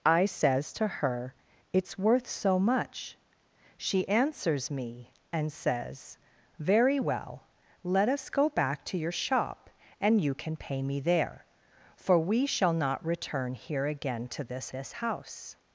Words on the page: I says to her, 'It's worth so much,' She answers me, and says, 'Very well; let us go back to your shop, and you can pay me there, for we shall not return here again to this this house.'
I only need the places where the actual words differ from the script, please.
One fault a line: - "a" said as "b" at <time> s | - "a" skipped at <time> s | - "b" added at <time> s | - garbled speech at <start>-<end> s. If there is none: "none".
none